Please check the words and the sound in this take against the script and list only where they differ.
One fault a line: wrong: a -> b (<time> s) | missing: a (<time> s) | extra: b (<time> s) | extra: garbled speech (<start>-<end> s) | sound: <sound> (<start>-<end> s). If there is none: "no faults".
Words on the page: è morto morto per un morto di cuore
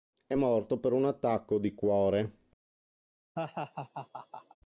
missing: morto (0.8 s)
wrong: morto -> attacco (1.0 s)
sound: laugh (3.4-4.6 s)